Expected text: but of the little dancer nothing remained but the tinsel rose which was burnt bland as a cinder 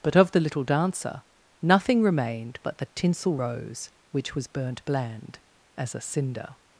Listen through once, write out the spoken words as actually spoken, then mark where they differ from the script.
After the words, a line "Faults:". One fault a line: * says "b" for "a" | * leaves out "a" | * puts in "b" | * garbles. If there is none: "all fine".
but of the little dancer nothing remained but the tinsel rose which was burnt bland as a cinder
Faults:
all fine